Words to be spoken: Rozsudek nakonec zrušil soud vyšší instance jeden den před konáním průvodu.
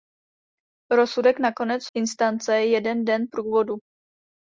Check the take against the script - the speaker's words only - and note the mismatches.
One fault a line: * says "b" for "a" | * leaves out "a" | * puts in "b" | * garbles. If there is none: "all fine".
* leaves out "zrušil soud vyšší"
* leaves out "před konáním"